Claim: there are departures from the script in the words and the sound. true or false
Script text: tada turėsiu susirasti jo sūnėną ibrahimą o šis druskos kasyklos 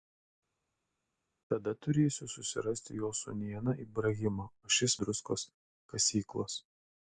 false